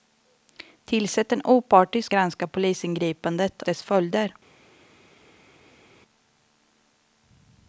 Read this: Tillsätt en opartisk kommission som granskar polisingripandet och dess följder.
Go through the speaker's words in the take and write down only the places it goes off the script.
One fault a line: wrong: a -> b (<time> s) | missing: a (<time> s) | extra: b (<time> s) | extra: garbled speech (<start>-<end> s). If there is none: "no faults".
missing: kommission som (2.1 s)
missing: och (3.6 s)